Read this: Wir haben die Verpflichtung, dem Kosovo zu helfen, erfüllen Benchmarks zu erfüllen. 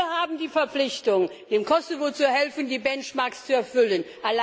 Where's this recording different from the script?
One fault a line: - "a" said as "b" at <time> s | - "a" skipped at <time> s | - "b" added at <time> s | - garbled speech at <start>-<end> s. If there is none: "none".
- "erfüllen" said as "die" at 2.7 s